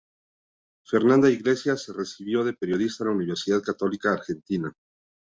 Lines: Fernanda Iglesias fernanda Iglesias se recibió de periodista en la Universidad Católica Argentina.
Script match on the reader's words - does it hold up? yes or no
no